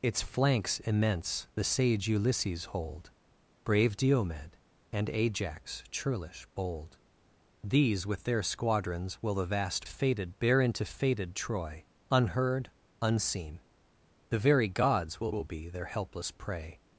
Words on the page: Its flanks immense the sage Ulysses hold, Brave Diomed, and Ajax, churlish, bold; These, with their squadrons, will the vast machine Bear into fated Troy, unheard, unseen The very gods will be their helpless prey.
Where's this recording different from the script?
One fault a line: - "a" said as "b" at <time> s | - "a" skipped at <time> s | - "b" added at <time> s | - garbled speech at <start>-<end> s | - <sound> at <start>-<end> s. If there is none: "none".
- "machine" said as "fated" at 9.8 s
- "will" added at 15.3 s